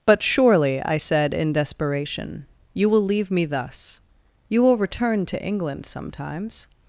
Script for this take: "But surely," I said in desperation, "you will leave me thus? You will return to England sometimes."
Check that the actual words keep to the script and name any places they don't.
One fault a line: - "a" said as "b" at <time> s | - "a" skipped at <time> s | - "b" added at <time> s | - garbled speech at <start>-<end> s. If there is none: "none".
none